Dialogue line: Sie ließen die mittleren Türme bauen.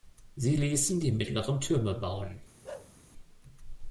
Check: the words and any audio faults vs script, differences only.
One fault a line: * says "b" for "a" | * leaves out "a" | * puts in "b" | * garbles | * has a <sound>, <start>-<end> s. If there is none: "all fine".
* has a bark, 2.6-2.9 s